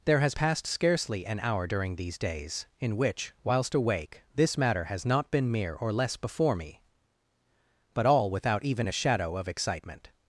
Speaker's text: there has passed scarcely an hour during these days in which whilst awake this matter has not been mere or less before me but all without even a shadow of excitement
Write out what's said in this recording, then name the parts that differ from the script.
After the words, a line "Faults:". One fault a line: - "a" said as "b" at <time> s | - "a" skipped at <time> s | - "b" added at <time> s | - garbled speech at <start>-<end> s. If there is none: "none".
there has passed scarcely an hour during these days in which whilst awake this matter has not been mere or less before me but all without even a shadow of excitement
Faults:
none